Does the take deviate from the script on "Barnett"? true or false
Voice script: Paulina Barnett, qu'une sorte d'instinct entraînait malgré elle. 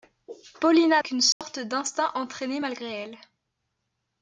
true